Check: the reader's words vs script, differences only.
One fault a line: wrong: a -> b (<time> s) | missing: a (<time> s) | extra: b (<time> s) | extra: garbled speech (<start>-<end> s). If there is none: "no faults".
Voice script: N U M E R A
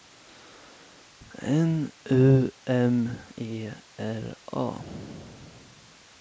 no faults